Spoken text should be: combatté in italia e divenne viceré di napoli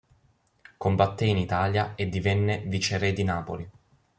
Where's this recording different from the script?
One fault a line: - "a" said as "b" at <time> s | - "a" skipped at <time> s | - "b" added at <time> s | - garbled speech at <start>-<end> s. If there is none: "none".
none